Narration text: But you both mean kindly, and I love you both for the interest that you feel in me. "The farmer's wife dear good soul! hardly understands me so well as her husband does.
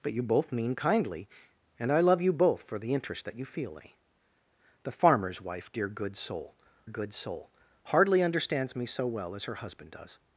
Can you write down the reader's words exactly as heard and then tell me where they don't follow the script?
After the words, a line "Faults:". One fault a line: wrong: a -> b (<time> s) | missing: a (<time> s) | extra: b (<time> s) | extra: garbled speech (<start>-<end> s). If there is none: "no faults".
But you both mean kindly, and I love you both for the interest that you feel me. "The farmer's wife dear good soul good soul! hardly understands me so well as her husband does.
Faults:
missing: in (3.8 s)
extra: good soul (6.9 s)